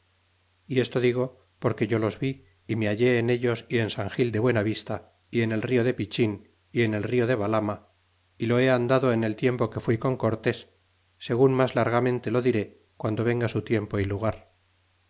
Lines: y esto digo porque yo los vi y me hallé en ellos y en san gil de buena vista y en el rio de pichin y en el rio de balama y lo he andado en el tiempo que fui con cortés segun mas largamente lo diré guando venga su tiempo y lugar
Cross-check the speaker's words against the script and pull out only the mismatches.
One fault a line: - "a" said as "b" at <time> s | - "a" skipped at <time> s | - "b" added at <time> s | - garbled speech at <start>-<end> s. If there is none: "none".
none